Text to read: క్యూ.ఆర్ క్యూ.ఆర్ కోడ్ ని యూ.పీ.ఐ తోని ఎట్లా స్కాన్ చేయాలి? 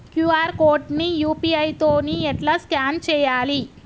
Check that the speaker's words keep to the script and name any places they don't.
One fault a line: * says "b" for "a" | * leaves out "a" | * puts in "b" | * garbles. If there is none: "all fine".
* leaves out "క్యూ.ఆర్"